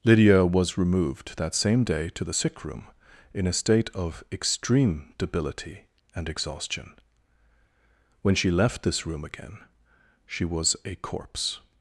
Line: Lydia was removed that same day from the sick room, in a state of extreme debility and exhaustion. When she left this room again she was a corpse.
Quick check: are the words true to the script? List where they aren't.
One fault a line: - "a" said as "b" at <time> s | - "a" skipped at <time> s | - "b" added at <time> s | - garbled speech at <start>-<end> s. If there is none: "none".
- "from" said as "to" at 2.1 s